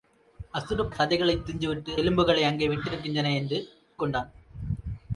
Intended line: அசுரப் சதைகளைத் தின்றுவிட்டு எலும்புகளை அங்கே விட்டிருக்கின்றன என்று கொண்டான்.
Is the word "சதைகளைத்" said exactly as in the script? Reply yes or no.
yes